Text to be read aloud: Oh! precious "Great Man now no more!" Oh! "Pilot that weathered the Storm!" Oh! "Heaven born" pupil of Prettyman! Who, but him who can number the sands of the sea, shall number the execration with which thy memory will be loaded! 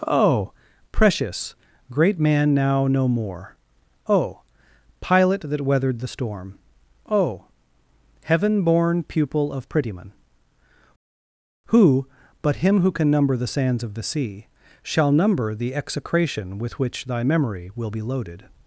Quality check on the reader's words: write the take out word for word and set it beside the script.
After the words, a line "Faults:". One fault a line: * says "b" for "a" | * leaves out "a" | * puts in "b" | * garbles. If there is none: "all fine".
Oh! precious "Great Man now no more!" Oh! "Pilot that weathered the Storm!" Oh! "Heaven born" pupil of Prettyman! Who, but him who can number the sands of the sea, shall number the execration with which thy memory will be loaded!
Faults:
all fine